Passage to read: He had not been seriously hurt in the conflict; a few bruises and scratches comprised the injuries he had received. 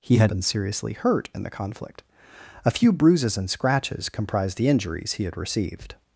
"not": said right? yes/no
no